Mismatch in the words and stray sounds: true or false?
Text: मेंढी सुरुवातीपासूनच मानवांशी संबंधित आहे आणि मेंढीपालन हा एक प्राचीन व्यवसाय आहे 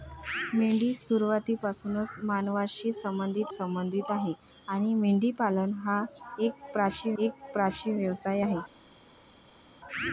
true